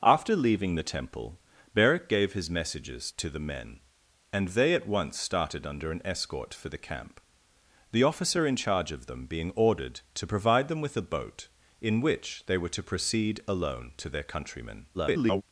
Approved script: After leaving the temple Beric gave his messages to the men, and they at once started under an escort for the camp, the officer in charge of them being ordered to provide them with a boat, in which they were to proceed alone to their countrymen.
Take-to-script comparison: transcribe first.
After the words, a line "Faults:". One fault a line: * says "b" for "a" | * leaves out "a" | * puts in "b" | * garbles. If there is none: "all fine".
After leaving the temple Beric gave his messages to the men, and they at once started under an escort for the camp, the officer in charge of them being ordered to provide them with a boat, in which they were to proceed alone to their countrymen. [garbled]
Faults:
* garbles